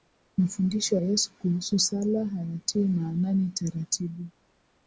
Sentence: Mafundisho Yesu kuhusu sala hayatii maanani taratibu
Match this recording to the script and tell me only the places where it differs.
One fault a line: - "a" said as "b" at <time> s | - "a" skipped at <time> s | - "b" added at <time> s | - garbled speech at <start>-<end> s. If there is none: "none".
none